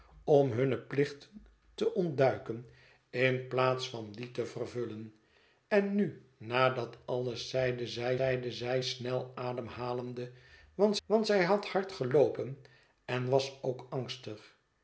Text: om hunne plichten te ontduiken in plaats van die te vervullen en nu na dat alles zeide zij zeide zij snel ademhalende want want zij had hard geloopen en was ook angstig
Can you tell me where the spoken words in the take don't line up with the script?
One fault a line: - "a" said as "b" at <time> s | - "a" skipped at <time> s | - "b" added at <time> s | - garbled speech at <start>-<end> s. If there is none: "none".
none